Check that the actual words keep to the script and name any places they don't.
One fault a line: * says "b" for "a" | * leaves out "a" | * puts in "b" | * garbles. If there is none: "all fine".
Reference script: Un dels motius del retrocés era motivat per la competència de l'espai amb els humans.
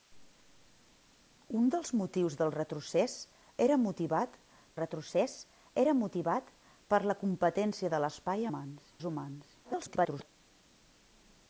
* puts in "retrocés era motivat"
* says "humans" for "amb"
* garbles